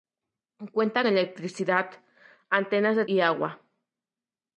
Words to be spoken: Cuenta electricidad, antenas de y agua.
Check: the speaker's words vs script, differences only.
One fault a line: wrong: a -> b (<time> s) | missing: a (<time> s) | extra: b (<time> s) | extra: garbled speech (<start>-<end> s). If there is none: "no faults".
no faults